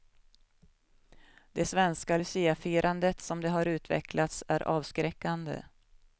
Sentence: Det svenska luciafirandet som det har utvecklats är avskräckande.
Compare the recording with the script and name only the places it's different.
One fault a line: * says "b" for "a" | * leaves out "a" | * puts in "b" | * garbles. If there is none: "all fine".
all fine